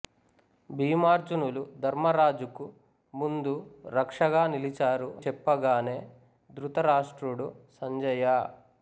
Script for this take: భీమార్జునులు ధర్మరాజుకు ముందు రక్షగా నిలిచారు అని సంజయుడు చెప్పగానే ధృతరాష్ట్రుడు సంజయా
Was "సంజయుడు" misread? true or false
true